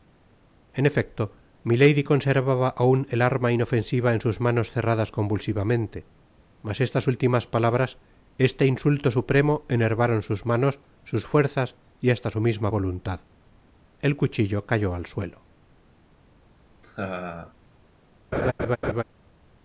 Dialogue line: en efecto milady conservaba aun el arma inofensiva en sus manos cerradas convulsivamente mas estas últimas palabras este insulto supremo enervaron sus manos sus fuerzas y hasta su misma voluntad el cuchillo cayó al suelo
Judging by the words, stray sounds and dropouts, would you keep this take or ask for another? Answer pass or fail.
fail